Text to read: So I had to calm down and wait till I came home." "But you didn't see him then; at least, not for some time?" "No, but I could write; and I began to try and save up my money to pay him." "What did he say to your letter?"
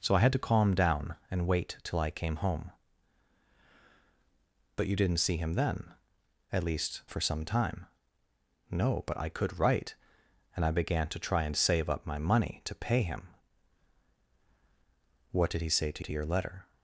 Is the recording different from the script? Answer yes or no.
yes